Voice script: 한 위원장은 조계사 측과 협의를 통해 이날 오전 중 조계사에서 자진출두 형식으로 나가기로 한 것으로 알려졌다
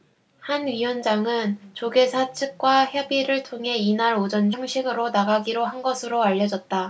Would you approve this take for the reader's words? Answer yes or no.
no